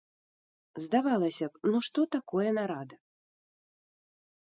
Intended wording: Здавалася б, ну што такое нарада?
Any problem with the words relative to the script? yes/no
no